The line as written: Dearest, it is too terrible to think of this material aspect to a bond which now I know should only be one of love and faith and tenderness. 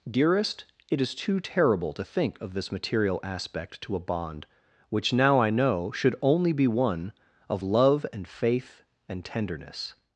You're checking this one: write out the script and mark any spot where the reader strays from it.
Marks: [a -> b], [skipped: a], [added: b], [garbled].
Dearest, it is too terrible to think of this material aspect to a bond which now I know should only be one of love and faith and tenderness.